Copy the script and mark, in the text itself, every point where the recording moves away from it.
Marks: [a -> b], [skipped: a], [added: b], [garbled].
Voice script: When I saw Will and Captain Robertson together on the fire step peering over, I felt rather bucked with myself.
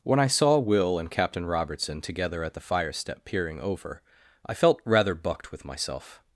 When I saw Will and Captain Robertson together [on -> at] the fire step peering over, I felt rather bucked with myself.